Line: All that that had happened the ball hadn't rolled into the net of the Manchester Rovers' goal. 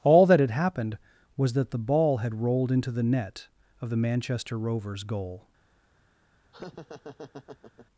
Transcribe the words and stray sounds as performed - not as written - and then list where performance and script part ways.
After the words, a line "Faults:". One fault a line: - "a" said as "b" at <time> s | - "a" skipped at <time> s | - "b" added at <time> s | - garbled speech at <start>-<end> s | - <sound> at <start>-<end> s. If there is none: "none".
All that had happened was that the ball had rolled into the net of the Manchester Rovers' goal.
Faults:
- "that" skipped at 0.4 s
- "was that" added at 1.4 s
- "hadn't" said as "had" at 2.2 s
- laugh at 6.5-7.9 s